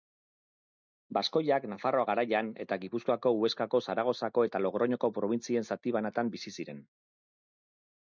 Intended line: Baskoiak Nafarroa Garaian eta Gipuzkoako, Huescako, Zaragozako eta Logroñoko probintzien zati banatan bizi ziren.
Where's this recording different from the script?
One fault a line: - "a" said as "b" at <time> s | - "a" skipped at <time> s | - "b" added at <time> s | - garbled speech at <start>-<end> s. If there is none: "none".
none